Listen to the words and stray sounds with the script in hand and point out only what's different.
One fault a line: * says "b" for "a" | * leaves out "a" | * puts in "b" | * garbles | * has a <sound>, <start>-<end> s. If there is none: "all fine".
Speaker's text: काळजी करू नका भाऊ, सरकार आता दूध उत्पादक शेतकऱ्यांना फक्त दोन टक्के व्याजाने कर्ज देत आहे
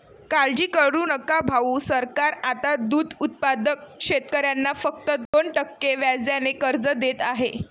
* has a dropout, 5.3-5.3 s